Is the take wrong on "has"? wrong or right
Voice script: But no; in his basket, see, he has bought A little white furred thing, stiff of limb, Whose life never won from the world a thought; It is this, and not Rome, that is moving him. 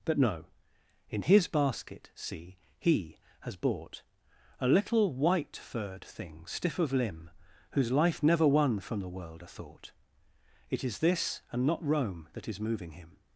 right